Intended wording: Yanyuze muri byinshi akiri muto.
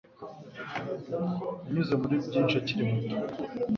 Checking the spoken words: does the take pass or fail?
pass